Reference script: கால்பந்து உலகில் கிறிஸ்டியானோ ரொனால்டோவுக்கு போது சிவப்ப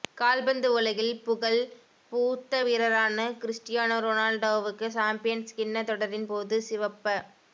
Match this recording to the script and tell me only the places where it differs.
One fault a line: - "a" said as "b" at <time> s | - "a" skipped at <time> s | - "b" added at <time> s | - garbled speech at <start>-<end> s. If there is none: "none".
- "புகழ் பூத்த வீரரான" added at 1.2 s
- "சம்பியன்ஸ் கிண்ண தொடரின்" added at 4.9 s